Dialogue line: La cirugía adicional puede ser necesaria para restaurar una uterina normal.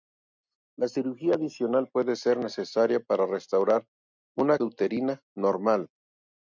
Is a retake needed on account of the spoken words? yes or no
no